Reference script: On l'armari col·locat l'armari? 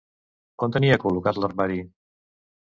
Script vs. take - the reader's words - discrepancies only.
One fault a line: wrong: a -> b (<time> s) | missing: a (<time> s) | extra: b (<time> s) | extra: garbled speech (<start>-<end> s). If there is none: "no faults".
wrong: l'armari -> tenia (0.7 s)